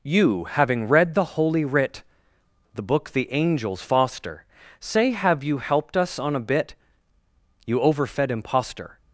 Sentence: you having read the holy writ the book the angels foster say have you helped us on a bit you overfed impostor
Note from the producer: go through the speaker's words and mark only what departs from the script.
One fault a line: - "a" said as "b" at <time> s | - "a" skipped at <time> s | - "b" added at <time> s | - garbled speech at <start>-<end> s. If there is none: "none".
none